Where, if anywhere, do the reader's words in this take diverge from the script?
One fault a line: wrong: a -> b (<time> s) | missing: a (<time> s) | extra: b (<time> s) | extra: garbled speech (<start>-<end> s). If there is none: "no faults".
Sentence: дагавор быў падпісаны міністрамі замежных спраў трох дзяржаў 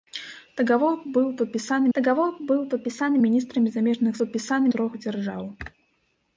extra: дагавор быў падпісаны (2.0 s)
wrong: спраў -> падпісаны (4.2 s)